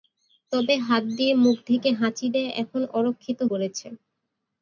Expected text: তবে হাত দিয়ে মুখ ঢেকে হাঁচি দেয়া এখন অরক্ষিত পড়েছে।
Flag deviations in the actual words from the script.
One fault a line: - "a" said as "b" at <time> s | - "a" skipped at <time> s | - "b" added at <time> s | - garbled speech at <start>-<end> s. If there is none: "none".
none